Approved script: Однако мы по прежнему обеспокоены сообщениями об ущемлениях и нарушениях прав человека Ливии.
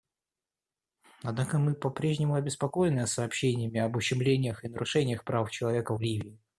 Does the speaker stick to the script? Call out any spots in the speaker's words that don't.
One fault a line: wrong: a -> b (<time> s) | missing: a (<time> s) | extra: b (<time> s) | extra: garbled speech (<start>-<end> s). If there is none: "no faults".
no faults